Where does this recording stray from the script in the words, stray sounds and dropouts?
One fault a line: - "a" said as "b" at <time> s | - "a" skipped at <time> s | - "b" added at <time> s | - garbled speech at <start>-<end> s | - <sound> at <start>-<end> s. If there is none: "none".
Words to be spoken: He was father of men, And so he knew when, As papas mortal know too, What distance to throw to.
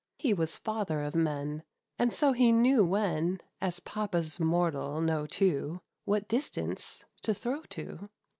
none